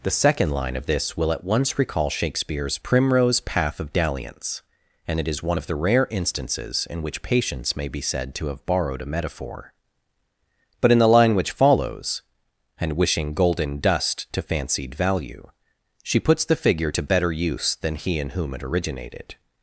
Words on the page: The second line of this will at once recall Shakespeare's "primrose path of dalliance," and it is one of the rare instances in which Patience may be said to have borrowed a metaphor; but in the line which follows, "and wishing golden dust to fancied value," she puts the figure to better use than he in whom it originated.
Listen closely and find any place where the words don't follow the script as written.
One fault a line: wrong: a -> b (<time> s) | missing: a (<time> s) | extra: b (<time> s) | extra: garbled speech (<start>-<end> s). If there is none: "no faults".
no faults